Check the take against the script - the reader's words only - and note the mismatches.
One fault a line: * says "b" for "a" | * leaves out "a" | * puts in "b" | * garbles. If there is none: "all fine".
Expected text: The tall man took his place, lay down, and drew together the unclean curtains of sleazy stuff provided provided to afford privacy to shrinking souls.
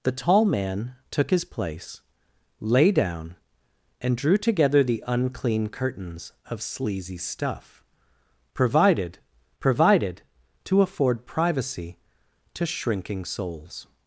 all fine